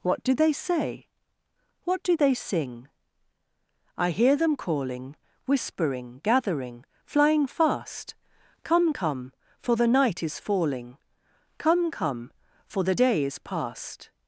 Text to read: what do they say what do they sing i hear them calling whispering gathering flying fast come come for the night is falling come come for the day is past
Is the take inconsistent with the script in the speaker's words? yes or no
no